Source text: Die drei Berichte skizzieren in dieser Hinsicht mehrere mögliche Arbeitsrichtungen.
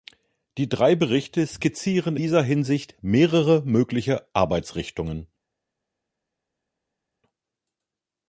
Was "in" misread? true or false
true